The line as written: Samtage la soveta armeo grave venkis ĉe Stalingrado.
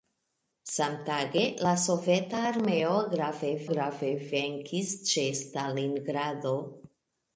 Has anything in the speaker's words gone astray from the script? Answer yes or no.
yes